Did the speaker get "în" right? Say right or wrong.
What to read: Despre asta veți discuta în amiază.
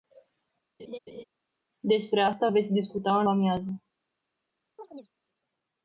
right